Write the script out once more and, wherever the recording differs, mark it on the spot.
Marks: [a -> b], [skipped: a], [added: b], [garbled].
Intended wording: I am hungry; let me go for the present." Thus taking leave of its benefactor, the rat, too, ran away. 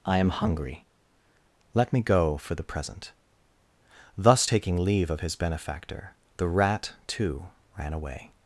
I am hungry; let me go for the present." Thus taking leave of [its -> his] benefactor, the rat, too, ran away.